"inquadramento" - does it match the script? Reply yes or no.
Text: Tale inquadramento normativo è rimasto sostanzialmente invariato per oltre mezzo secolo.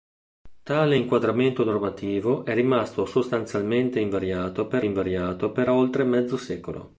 yes